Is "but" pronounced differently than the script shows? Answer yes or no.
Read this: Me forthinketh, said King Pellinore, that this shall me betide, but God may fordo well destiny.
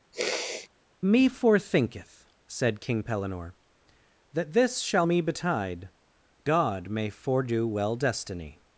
yes